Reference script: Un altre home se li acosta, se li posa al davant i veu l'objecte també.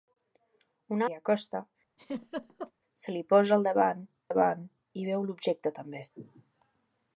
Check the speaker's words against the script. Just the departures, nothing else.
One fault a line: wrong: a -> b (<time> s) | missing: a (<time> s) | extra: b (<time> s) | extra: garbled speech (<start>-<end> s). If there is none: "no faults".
missing: altre home se (1.0 s)
extra: davant (4.3 s)